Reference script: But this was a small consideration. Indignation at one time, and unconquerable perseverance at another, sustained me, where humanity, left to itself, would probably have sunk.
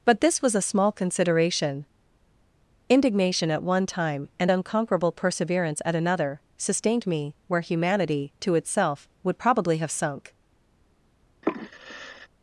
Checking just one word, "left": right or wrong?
wrong